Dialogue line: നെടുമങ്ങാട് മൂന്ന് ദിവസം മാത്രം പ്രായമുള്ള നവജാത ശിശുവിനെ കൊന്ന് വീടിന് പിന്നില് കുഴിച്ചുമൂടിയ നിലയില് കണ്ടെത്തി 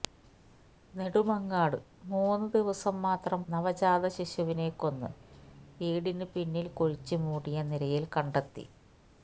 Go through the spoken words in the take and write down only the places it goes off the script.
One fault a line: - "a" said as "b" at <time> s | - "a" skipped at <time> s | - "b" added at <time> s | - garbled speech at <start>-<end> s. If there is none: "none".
- "പ്രായമുള്ള" skipped at 3.4 s